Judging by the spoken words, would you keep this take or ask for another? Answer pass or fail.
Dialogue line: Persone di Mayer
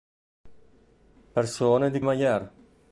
pass